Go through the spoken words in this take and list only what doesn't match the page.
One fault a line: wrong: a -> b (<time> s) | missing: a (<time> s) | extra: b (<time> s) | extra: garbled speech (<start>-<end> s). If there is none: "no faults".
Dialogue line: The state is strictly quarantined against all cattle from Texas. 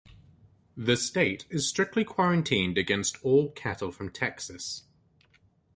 no faults